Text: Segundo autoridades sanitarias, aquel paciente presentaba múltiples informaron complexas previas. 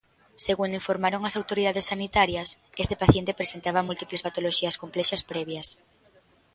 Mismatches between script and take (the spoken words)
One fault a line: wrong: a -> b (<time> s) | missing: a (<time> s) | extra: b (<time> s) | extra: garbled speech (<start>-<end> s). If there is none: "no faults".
extra: informaron as (0.8 s)
wrong: aquel -> este (2.8 s)
wrong: informaron -> patoloxías (4.3 s)